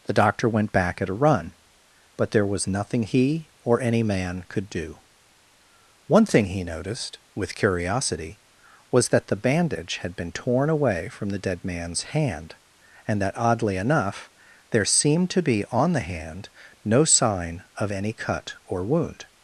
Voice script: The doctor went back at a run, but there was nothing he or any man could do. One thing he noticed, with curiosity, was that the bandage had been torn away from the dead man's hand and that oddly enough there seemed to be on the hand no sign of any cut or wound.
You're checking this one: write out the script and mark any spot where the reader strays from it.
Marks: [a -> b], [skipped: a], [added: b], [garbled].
The doctor went back at a run, but there was nothing he or any man could do. One thing he noticed, with curiosity, was that the bandage had been torn away from the dead man's hand and that oddly enough there seemed to be on the hand no sign of any cut or wound.